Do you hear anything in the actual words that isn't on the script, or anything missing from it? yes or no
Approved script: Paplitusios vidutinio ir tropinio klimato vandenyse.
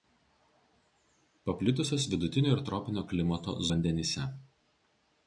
no